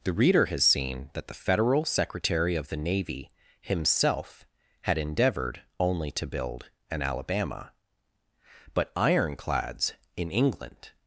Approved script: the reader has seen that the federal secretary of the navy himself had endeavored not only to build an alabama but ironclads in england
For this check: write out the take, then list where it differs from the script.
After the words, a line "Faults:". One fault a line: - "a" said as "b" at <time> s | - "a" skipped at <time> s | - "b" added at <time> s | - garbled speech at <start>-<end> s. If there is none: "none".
the reader has seen that the federal secretary of the navy himself had endeavored only to build an alabama but ironclads in england
Faults:
- "not" skipped at 5.6 s